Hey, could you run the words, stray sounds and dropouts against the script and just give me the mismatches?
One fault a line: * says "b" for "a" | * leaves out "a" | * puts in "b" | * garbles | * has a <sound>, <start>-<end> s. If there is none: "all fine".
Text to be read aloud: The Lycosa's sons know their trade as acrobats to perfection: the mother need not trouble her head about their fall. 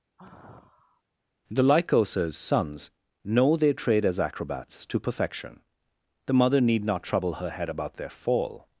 * has a sigh, 0.2-1.0 s